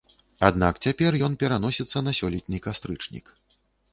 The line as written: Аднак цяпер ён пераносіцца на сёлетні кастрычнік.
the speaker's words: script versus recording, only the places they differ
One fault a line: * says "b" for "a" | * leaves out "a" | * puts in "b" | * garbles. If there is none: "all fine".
all fine